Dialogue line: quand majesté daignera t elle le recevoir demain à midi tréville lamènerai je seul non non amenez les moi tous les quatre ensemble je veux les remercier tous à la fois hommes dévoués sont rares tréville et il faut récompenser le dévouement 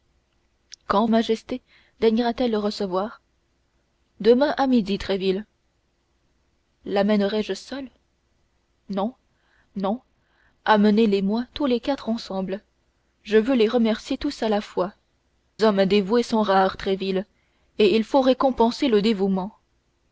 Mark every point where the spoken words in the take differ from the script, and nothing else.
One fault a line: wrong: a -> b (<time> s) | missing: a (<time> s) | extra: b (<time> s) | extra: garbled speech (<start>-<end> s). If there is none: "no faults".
no faults